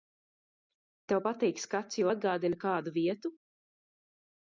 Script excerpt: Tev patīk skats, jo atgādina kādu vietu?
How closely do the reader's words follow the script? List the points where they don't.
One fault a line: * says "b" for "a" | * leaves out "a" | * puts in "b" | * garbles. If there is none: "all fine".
all fine